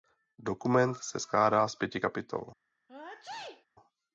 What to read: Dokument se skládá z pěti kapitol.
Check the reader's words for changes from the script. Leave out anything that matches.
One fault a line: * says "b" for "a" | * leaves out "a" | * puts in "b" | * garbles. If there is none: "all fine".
all fine